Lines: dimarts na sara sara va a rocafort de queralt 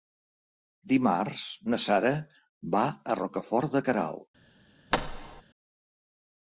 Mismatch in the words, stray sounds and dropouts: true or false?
true